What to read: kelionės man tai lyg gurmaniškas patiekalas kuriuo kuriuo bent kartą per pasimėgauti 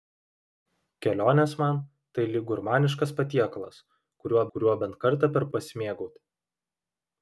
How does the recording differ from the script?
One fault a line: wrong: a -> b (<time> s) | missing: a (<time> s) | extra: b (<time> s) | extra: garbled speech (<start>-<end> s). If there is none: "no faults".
no faults